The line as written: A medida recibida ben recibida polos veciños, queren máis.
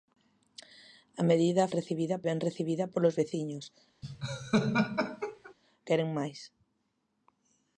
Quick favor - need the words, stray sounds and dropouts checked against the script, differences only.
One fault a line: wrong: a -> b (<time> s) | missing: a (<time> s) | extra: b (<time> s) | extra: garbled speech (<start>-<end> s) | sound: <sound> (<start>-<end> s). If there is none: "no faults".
sound: laugh (4.0-5.5 s)